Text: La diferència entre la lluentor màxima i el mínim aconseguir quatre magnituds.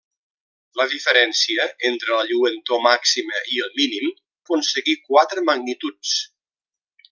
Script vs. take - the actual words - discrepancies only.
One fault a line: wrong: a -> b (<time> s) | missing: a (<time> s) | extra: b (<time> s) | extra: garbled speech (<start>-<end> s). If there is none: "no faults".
no faults